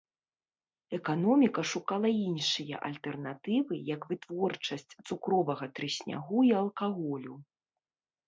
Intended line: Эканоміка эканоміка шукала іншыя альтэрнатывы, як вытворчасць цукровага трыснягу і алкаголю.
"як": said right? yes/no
yes